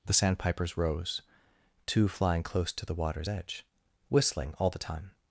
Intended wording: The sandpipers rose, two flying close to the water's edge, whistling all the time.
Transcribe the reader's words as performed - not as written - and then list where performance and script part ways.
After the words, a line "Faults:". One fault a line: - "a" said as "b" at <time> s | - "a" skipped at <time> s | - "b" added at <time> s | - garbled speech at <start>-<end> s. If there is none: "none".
The sandpipers rose, two flying close to the water's edge, whistling all the time.
Faults:
none